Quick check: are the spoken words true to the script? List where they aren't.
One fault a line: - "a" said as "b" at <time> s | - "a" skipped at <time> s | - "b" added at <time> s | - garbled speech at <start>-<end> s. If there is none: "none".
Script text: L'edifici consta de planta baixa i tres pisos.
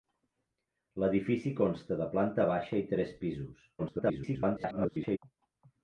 - garbled speech at 3.8-5.2 s